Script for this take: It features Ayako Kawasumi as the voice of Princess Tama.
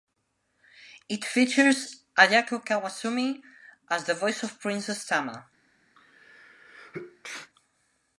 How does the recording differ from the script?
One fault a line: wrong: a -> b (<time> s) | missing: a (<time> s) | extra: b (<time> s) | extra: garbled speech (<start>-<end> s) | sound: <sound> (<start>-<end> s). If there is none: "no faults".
sound: sneeze (5.9-7.5 s)